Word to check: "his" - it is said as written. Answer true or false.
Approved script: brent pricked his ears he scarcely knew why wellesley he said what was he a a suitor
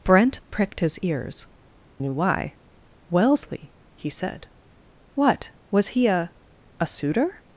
true